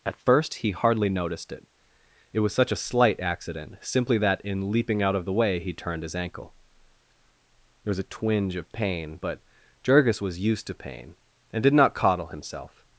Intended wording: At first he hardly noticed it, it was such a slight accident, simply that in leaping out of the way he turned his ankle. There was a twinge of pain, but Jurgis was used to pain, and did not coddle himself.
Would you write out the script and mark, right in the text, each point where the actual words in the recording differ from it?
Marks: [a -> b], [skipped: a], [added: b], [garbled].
At first he hardly noticed it, it was such a slight accident, simply that in leaping out of the way he turned his ankle. There was a twinge of pain, but Jurgis was used to pain, and did not coddle himself.